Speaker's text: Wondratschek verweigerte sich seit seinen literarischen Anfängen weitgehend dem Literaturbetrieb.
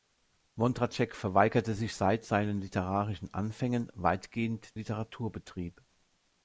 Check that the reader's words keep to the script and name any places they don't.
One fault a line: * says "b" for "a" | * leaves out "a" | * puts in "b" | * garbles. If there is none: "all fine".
* leaves out "dem"